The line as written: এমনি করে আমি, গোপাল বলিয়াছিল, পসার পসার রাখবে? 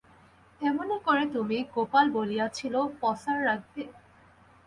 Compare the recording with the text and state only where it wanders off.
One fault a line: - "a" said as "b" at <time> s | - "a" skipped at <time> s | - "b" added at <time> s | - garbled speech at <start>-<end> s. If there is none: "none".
- "আমি" said as "তুমি" at 1.4 s
- "পসার" skipped at 3.4 s